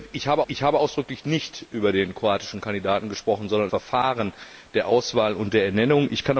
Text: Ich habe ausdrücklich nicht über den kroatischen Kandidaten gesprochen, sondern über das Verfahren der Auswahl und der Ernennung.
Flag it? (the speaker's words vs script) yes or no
yes